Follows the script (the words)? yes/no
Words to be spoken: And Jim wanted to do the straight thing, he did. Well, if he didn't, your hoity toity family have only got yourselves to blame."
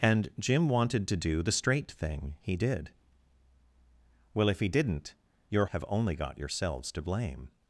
no